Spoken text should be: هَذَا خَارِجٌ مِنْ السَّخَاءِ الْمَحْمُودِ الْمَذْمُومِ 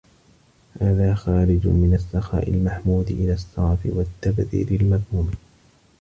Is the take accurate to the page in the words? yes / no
no